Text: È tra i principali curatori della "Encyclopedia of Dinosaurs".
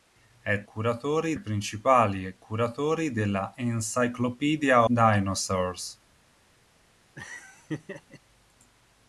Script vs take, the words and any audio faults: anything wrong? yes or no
yes